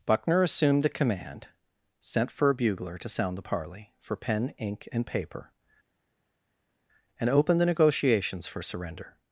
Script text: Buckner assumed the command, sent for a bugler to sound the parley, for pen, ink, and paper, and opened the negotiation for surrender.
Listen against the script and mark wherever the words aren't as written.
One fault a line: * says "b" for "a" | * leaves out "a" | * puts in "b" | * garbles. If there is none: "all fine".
* says "negotiations" for "negotiation"